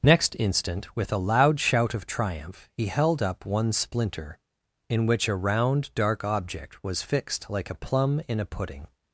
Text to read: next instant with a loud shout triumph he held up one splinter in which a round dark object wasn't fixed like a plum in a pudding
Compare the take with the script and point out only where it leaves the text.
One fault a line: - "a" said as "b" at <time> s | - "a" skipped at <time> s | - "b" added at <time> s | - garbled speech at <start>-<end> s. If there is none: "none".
- "of" added at 1.9 s
- "wasn't" said as "was" at 6.8 s